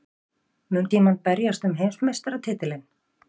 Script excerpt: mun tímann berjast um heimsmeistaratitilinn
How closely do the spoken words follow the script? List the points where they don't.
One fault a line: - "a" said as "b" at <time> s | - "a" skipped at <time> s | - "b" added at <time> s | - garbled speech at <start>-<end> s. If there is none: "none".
none